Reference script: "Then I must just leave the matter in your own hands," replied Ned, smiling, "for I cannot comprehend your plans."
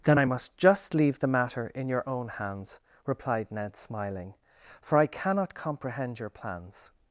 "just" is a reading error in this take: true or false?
false